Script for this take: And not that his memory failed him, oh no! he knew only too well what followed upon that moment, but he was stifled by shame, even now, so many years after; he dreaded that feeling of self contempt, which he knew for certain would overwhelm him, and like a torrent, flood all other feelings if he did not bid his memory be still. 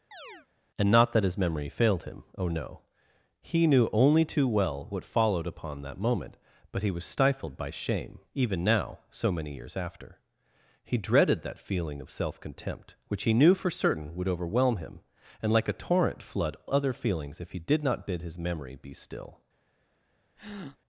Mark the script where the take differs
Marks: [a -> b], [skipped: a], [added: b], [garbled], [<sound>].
[chirp] And not that his memory failed him, oh no! he knew only too well what followed upon that moment, but he was stifled by shame, even now, so many years after; he dreaded that feeling of self contempt, which he knew for certain would overwhelm him, and like a torrent, flood [skipped: all] other feelings if he did not bid his memory be still. [breath]